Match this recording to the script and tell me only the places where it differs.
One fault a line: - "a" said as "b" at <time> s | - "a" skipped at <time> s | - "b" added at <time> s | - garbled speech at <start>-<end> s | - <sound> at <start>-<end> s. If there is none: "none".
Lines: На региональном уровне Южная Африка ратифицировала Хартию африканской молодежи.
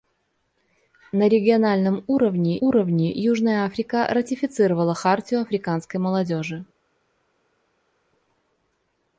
- "уровне" added at 2.6 s